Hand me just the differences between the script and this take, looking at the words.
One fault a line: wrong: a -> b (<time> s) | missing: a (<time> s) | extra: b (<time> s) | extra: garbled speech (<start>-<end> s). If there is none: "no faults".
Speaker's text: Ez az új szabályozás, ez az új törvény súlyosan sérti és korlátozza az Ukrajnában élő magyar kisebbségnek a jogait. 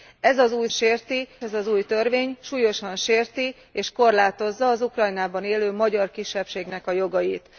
wrong: szabályozás -> sérti (0.7 s)